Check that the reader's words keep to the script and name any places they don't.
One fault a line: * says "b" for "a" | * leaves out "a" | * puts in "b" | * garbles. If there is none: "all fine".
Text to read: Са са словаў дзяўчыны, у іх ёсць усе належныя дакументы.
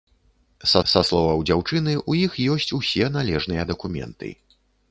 all fine